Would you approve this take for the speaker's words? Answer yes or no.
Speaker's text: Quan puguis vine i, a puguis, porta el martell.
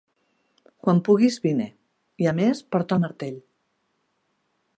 no